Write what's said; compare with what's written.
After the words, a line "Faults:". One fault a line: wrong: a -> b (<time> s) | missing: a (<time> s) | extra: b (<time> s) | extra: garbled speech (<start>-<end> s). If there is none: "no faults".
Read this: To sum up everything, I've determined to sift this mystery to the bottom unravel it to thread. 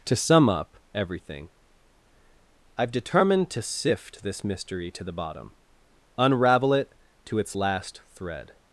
To sum up everything, I've determined to sift this mystery to the bottom unravel it to its last thread.
Faults:
extra: its last (7.4 s)